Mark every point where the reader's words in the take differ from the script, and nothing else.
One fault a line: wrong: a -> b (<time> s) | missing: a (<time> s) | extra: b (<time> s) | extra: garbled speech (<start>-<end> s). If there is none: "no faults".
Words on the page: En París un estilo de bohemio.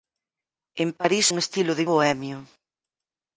no faults